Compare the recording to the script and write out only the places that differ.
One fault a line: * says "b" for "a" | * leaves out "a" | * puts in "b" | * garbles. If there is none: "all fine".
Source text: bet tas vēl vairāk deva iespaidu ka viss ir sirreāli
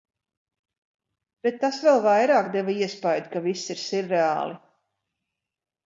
all fine